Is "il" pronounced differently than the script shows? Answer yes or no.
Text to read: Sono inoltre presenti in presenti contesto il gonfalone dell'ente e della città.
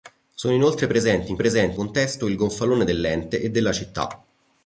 no